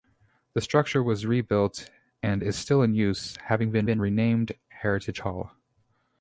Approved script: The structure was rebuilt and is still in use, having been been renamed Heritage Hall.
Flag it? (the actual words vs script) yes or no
no